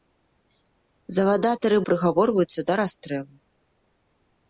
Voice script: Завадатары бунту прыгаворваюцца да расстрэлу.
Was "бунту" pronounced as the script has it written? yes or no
no